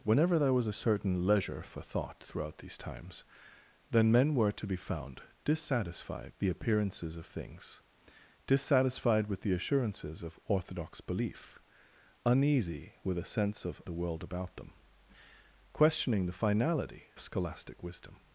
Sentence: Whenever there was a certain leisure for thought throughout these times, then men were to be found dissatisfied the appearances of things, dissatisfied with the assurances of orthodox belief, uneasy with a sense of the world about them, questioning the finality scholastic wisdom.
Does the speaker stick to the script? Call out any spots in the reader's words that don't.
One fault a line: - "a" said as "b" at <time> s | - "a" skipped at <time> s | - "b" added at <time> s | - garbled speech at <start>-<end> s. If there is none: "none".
none